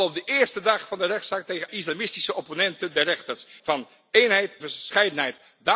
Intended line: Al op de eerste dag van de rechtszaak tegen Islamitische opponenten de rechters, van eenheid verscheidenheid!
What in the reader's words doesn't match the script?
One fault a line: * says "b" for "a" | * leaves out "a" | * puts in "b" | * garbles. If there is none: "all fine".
all fine